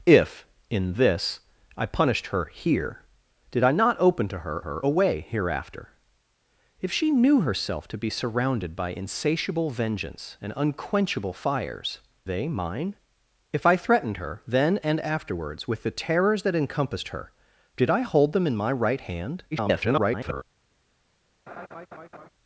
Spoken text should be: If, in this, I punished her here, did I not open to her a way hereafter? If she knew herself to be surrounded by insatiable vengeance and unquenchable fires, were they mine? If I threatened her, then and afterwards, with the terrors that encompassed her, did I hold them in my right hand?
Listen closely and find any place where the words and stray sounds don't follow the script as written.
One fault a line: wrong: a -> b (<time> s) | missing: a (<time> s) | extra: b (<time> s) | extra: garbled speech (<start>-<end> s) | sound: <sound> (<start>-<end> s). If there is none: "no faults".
extra: her (4.6 s)
missing: were (12.0 s)
extra: garbled speech (19.5-20.4 s)
sound: laugh (21.5-22.3 s)